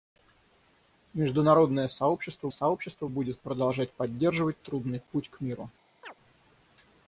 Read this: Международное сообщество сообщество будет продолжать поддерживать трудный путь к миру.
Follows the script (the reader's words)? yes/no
yes